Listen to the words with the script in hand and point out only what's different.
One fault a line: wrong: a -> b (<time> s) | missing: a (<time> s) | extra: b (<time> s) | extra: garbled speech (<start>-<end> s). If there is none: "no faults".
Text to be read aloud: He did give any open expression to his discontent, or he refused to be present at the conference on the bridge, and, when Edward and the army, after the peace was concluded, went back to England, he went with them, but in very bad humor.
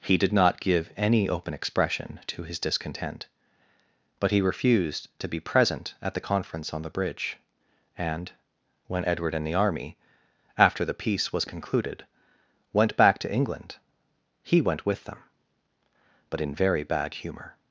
extra: not (0.3 s)
wrong: or -> but (4.2 s)